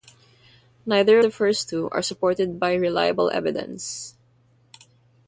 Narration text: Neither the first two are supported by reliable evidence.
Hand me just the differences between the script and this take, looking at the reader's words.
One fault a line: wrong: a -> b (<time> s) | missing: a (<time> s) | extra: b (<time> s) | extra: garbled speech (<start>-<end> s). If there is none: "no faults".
no faults